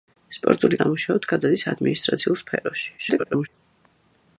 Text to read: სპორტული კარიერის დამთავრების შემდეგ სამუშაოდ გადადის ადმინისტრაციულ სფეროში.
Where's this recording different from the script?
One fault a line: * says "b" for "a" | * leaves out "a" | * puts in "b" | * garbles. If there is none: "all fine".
* leaves out "კარიერის დამთავრების შემდეგ"
* garbles